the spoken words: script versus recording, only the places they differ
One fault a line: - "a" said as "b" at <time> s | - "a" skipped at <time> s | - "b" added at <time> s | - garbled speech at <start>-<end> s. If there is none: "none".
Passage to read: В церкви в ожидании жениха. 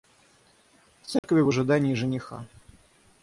none